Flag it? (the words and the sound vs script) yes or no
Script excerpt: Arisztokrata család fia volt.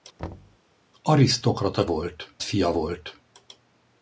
yes